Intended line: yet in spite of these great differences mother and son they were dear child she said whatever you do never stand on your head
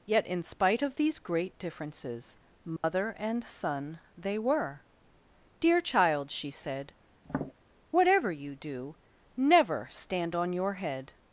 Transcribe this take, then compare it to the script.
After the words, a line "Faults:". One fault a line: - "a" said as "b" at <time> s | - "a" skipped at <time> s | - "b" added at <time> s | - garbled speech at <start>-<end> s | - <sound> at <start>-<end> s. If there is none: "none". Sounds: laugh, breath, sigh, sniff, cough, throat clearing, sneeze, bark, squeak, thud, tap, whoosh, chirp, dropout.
yet in spite of these great differences mother and son they were dear child she said whatever you do never stand on your head
Faults:
- dropout at 2.8-2.8 s
- tap at 7.2-7.5 s